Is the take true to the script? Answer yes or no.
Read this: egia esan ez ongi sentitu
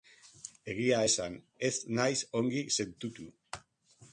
no